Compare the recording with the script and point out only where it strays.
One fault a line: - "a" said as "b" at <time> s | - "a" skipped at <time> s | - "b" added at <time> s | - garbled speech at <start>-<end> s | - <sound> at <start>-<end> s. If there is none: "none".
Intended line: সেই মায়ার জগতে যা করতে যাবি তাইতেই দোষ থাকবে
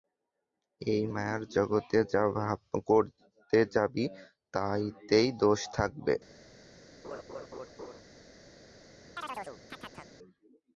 - "সেই" said as "এই" at 0.8 s
- laugh at 7.0-8.0 s
- chirp at 9.2-10.1 s